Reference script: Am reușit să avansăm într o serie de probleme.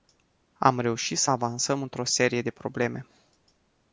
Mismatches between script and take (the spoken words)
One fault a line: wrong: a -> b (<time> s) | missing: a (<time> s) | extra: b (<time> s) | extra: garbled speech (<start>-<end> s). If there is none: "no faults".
no faults